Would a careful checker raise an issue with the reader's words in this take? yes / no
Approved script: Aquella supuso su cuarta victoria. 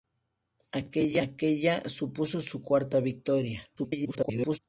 yes